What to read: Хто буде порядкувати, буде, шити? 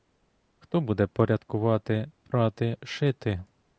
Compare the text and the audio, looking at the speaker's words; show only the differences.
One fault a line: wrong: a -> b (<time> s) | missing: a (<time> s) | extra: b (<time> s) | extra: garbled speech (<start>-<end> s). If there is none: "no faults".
wrong: буде -> прати (2.2 s)